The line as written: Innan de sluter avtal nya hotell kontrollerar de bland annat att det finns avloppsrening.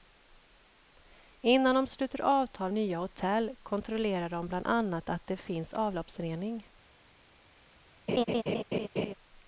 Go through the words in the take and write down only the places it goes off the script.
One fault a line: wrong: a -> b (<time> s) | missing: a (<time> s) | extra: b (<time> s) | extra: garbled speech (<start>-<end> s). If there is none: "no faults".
no faults